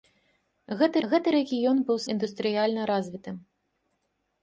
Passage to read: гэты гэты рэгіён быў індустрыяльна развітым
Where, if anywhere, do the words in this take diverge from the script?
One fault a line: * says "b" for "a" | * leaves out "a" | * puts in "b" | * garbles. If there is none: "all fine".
all fine